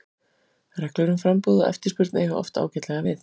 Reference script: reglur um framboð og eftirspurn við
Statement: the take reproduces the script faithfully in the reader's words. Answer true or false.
false